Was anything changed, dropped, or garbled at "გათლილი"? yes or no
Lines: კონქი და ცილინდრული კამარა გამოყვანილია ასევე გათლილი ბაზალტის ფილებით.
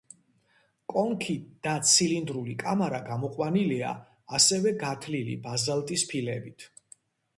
no